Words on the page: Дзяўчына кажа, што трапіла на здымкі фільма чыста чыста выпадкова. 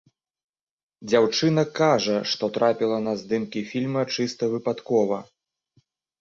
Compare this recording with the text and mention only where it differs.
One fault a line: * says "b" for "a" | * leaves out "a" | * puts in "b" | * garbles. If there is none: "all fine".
* leaves out "чыста"